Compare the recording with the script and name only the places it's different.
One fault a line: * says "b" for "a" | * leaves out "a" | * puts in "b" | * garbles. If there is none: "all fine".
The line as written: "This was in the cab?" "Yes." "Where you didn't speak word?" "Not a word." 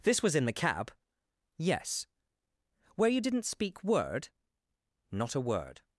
all fine